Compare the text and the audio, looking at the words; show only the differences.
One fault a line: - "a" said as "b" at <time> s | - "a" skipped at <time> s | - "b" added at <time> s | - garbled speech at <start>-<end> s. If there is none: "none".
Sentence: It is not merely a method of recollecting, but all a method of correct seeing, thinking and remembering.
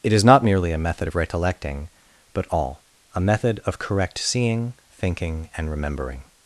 none